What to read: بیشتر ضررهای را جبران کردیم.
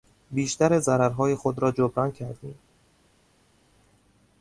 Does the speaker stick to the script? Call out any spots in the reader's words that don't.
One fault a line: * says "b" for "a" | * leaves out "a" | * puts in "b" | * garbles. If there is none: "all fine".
* puts in "خود"